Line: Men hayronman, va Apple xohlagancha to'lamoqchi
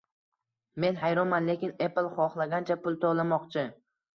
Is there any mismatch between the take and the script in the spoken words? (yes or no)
yes